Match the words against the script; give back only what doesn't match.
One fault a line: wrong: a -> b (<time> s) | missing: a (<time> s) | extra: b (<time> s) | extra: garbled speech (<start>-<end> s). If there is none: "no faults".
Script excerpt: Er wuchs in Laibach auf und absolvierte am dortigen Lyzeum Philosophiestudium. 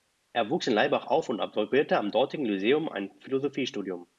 extra: ein (2.9 s)